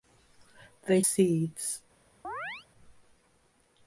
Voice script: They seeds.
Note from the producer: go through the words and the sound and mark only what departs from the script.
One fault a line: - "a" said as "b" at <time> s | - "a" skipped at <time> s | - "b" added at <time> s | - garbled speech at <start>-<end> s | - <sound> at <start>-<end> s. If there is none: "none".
- chirp at 2.2-2.7 s